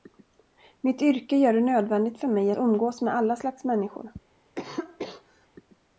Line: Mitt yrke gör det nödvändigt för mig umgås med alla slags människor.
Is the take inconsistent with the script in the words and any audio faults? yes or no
yes